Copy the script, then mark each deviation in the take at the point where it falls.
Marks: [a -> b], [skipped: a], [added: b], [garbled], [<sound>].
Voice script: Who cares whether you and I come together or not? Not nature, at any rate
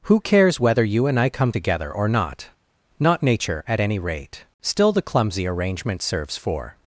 Who cares whether you and I come together or not? Not nature, at any rate [added: Still the clumsy arrangement serves for]